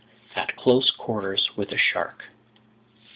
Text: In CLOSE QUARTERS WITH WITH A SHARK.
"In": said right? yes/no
no